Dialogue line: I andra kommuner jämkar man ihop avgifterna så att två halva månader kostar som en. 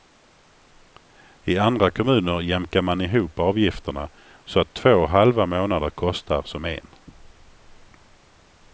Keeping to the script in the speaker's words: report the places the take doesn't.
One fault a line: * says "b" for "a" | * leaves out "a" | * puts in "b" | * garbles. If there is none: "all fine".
all fine